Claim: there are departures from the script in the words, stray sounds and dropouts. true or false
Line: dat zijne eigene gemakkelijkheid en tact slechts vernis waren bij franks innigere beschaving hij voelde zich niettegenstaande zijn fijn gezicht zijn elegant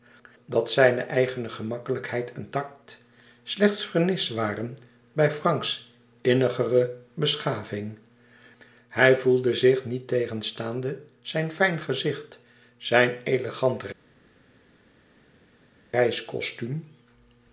false